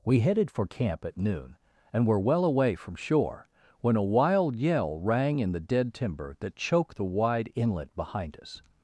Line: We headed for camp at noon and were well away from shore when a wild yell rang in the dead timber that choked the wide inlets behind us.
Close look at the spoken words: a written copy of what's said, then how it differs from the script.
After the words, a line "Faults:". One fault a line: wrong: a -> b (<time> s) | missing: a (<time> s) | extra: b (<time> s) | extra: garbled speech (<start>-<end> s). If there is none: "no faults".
We headed for camp at noon and were well away from shore when a wild yell rang in the dead timber that choked the wide inlet behind us.
Faults:
wrong: inlets -> inlet (7.5 s)